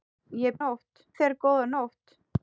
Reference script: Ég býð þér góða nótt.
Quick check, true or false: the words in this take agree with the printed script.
false